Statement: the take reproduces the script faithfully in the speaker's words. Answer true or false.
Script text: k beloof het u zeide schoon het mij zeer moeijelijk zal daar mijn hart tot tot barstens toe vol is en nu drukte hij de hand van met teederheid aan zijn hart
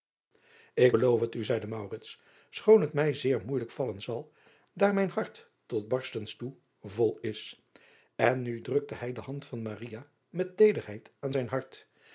false